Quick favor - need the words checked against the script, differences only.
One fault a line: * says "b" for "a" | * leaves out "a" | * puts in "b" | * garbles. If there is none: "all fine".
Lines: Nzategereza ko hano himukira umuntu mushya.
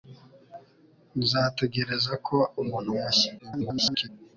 * leaves out "hano himukira"
* garbles